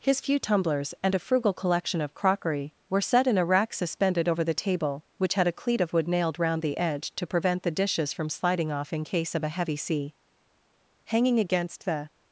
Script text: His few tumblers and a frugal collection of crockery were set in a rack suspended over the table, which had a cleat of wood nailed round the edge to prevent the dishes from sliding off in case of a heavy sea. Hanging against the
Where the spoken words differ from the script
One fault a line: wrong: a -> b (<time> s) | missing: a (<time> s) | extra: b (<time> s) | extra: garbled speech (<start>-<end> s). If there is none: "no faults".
no faults